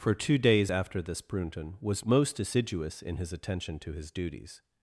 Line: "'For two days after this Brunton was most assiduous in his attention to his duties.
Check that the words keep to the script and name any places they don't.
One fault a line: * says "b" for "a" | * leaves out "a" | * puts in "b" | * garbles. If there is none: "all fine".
all fine